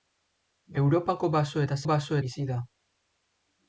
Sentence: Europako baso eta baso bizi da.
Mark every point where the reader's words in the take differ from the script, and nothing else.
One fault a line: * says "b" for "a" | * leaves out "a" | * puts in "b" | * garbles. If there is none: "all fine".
all fine